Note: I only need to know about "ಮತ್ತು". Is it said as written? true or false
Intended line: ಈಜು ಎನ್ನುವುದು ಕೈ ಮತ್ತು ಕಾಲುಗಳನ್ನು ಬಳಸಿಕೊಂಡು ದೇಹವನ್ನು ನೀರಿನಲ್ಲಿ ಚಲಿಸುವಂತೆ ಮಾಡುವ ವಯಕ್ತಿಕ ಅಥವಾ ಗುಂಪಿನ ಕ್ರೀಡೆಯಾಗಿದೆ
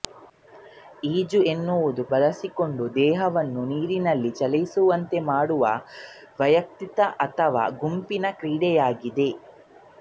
false